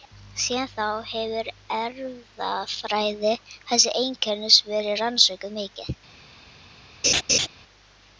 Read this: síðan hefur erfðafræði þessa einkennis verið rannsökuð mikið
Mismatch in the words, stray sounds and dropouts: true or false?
true